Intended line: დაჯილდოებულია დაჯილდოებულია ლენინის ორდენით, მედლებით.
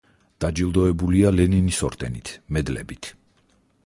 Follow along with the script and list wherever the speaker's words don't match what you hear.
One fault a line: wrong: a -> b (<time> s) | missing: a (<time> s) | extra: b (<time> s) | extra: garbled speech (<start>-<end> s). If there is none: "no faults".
missing: დაჯილდოებულია (1.3 s)